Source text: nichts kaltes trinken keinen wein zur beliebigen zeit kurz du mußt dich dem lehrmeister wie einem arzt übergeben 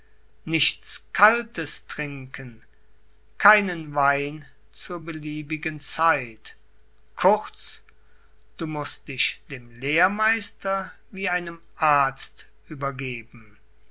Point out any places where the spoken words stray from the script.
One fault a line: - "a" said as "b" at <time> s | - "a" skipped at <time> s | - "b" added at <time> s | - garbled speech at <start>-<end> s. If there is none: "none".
none